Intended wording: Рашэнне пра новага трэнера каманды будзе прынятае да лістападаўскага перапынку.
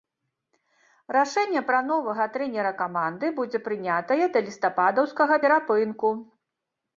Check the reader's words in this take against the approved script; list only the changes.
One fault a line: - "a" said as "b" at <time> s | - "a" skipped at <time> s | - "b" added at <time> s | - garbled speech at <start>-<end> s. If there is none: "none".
none